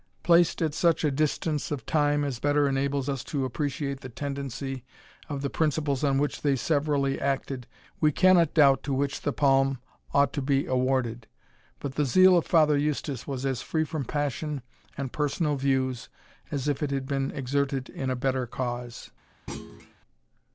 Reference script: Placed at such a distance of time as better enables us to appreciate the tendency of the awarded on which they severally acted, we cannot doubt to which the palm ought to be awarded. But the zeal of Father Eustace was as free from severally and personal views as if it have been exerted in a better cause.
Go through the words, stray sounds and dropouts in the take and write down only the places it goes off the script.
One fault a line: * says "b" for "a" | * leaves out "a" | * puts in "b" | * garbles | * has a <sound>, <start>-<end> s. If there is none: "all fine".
* says "principles" for "awarded"
* says "passion" for "severally"
* says "had" for "have"
* has a thud, 19.5-19.9 s